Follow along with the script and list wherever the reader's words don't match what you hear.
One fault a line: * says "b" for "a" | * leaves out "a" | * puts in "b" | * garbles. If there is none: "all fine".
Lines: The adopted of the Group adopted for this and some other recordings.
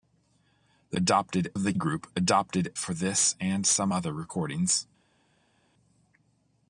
all fine